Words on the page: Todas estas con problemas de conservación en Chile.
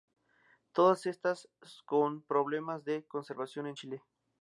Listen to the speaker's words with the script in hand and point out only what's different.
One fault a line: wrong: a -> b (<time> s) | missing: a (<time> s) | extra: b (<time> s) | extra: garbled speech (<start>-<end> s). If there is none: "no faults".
no faults